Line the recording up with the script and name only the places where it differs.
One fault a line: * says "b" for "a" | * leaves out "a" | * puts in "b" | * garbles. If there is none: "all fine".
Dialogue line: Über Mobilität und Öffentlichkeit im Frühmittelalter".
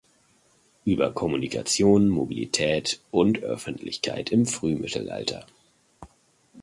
* puts in "Kommunikation"